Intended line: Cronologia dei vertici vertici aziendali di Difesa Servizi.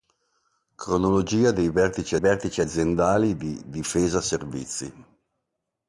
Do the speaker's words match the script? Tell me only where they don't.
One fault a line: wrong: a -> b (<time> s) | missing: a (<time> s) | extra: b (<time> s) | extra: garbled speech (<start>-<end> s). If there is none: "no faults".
no faults